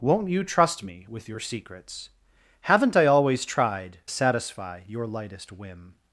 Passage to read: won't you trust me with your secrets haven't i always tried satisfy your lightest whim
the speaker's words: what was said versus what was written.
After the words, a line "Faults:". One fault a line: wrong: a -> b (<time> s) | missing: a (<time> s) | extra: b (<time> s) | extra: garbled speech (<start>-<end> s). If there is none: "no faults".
won't you trust me with your secrets haven't i always tried satisfy your lightest whim
Faults:
no faults